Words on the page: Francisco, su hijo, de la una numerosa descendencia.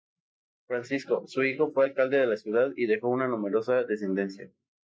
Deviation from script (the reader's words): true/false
true